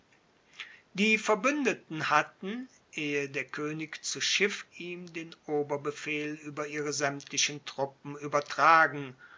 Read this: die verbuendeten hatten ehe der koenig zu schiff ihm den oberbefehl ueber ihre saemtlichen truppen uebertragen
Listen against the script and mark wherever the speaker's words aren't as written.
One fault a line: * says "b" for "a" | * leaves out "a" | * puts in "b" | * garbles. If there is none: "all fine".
all fine